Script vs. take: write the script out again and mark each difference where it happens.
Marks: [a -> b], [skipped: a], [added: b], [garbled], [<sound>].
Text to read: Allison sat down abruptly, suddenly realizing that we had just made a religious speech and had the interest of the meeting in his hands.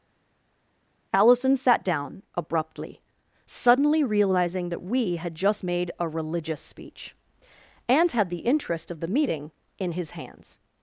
Allison sat down abruptly, suddenly realizing that we had just made a religious speech and had the interest of the meeting in his hands.